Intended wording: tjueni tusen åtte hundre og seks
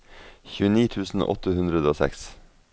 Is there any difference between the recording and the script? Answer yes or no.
no